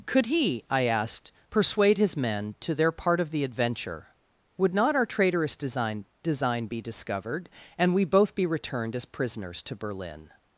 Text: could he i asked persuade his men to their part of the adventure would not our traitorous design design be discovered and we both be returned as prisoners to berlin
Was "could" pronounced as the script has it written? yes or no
yes